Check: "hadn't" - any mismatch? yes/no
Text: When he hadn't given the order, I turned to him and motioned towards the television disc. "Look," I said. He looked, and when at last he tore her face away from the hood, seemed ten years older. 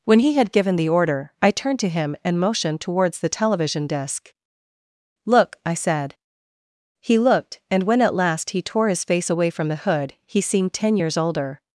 yes